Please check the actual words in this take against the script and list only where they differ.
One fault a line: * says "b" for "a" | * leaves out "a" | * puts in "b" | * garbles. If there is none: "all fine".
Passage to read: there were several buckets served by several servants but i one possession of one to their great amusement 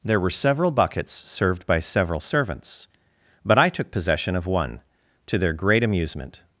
* says "took" for "one"